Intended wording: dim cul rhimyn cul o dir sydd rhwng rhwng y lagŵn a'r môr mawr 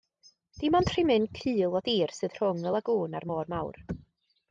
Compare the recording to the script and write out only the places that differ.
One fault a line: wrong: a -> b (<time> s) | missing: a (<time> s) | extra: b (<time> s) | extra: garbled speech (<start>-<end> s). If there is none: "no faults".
wrong: cul -> ond (0.8 s)
missing: rhwng (2.6 s)